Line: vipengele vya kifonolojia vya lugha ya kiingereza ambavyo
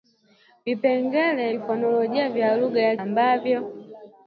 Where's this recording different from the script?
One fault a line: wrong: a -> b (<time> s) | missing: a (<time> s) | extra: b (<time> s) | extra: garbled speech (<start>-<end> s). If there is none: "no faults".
missing: vya (1.5 s)
missing: kiingereza (3.0 s)